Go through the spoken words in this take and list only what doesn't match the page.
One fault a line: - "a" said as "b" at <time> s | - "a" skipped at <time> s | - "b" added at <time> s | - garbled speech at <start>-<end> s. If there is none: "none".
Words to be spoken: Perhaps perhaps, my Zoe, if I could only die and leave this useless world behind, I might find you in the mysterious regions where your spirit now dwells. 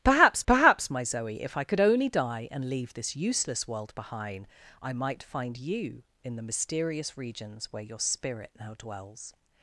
none